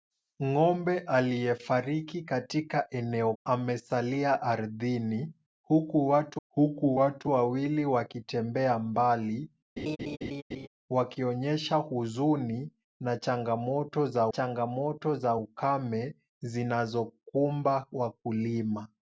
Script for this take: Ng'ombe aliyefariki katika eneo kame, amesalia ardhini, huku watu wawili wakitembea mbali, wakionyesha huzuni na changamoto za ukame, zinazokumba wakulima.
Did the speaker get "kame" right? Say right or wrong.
wrong